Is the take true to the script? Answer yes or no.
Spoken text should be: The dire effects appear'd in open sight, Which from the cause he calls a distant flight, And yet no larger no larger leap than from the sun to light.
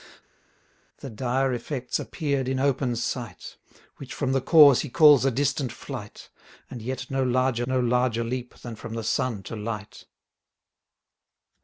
yes